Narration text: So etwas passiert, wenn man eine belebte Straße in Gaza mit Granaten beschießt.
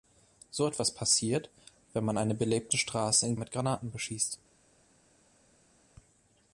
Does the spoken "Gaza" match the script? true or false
false